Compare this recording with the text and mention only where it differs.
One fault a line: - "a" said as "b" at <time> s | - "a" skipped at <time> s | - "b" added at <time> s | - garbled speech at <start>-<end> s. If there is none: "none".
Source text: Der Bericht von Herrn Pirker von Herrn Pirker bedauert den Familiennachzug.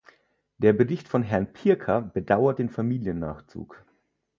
- "von Herrn Pirker" skipped at 2.0 s